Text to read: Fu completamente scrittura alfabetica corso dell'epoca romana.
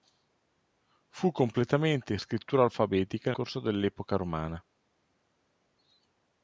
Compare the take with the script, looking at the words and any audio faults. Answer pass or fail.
pass